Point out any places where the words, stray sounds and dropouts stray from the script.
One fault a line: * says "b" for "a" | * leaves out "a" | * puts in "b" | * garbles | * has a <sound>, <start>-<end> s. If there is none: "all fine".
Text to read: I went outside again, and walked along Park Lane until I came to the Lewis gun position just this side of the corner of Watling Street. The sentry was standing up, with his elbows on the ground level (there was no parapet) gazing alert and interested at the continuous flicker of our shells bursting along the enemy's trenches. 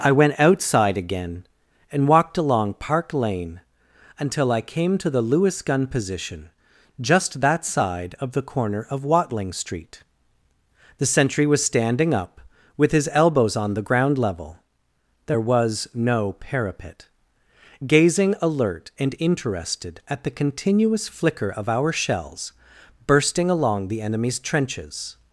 * says "that" for "this"